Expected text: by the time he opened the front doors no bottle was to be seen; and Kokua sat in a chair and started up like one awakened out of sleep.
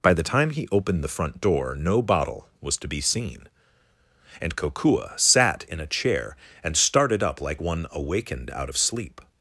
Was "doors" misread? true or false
true